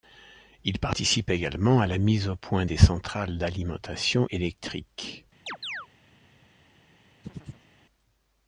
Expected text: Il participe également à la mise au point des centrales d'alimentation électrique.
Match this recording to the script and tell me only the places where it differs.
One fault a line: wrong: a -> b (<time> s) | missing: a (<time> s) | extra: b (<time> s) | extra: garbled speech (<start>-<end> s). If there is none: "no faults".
no faults